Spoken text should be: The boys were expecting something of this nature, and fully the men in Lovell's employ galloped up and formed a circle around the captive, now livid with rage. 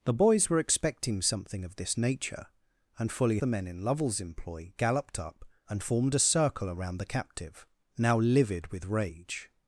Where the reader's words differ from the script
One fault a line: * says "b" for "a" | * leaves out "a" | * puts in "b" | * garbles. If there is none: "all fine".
all fine